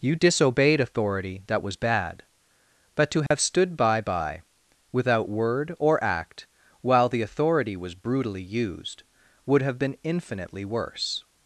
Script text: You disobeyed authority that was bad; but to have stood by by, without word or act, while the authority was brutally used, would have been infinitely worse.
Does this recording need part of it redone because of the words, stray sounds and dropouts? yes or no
yes